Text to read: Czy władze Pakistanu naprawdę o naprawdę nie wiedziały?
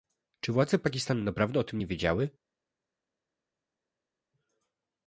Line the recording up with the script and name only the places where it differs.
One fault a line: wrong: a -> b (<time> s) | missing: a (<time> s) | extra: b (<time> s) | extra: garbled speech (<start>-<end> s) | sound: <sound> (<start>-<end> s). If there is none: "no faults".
wrong: naprawdę -> tym (1.6 s)